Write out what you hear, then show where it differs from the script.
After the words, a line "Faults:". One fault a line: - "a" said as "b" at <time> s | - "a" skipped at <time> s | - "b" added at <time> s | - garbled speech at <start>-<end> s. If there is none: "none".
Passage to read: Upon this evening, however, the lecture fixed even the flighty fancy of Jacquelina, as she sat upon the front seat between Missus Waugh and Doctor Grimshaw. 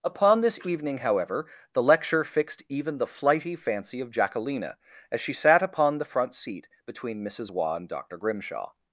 Upon this evening, however, the lecture fixed even the flighty fancy of Jacquelina, as she sat upon the front seat between Missus Waugh and Doctor Grimshaw.
Faults:
none